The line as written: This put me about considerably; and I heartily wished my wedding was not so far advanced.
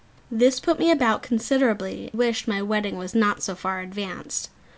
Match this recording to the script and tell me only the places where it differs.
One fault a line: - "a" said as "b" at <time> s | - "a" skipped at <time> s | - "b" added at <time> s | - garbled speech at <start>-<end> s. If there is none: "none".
- "and I heartily" skipped at 2.1 s